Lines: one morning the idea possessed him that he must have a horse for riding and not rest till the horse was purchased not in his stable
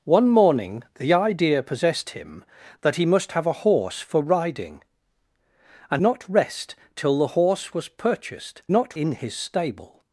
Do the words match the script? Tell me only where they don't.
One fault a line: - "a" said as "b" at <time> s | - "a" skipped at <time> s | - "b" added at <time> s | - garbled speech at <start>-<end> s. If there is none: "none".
none